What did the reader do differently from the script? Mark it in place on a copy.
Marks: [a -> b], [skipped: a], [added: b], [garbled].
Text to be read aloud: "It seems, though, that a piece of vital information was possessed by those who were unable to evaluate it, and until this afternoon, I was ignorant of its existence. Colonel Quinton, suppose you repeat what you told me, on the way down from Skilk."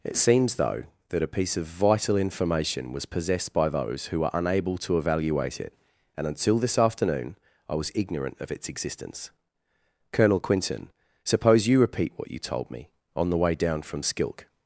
"It seems, though, that a piece of vital information was possessed by those who were unable to evaluate it, and until this afternoon, I was ignorant of its existence. Colonel Quinton, suppose you repeat what you told me, on the way down from Skilk."